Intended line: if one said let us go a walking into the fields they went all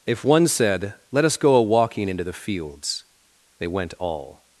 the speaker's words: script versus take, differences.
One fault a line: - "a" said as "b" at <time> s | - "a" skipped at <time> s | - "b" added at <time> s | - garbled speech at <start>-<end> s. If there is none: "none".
none